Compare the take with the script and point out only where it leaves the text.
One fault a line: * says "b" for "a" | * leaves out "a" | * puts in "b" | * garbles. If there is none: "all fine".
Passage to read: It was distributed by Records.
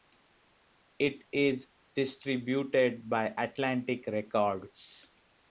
* says "is" for "was"
* puts in "Atlantic"